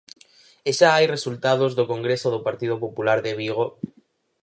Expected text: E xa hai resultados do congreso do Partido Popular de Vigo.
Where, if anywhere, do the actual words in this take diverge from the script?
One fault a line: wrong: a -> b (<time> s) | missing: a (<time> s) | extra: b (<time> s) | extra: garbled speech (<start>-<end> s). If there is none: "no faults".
no faults